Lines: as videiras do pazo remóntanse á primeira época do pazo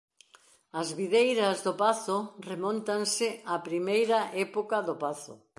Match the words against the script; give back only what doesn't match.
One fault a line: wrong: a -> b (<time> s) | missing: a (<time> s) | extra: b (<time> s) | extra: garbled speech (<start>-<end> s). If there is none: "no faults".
no faults